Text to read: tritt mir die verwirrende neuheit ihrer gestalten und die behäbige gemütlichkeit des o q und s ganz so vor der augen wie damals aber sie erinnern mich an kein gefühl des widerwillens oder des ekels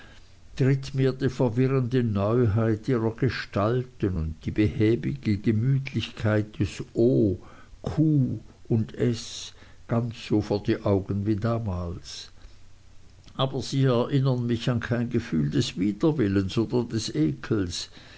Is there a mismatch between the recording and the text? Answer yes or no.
yes